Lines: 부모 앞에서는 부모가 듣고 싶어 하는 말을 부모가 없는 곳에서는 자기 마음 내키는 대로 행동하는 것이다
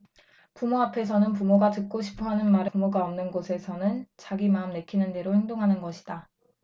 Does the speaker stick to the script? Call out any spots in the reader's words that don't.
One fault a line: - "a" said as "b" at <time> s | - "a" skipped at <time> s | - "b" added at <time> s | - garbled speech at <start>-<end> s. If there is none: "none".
none